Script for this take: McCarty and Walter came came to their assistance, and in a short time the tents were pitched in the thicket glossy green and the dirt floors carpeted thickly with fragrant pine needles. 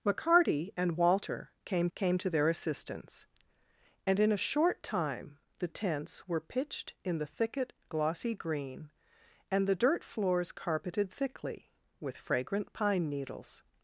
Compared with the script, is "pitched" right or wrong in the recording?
right